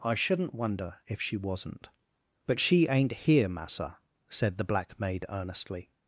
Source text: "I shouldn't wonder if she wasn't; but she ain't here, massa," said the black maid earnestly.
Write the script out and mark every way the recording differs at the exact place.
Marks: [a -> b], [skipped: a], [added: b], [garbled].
"I shouldn't wonder if she wasn't; but she ain't here, massa," said the black maid earnestly.